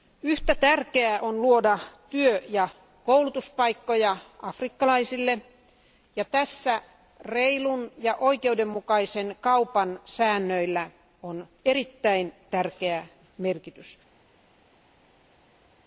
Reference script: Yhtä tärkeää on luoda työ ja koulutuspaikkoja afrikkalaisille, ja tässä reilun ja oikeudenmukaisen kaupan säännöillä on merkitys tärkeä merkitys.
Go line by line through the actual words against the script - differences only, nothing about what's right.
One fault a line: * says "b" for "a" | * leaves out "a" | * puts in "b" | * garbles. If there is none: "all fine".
* says "erittäin" for "merkitys"